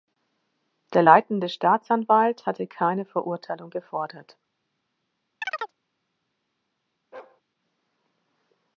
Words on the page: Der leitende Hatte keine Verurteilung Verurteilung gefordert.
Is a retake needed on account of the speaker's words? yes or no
yes